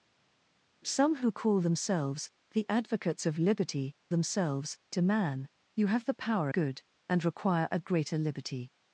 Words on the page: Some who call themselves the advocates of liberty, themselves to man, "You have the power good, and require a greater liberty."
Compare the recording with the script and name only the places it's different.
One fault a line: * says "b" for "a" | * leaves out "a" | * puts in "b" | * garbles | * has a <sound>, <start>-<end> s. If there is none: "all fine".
all fine